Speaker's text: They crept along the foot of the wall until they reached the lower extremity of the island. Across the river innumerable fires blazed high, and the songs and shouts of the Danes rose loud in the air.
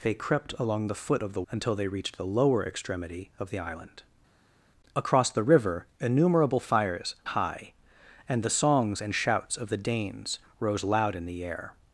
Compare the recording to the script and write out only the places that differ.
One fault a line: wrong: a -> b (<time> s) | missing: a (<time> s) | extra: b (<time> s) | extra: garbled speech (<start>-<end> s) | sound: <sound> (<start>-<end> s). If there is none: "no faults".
missing: wall (1.4 s)
missing: blazed (7.1 s)